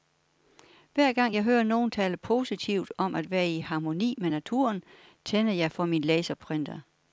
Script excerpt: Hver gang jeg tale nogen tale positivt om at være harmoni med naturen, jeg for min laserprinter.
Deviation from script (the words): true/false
true